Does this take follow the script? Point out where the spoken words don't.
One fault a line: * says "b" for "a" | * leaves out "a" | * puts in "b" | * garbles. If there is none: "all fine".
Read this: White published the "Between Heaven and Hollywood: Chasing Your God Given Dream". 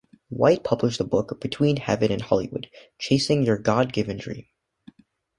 * puts in "book"